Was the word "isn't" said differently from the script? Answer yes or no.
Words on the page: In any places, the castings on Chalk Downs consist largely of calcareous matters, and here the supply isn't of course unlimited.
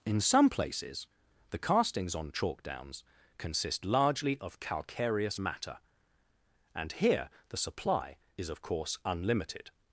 yes